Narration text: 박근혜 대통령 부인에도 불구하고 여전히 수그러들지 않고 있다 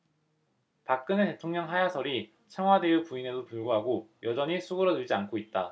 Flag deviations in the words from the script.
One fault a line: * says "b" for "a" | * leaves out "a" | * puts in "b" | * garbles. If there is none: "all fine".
* puts in "하야설이 청와대의"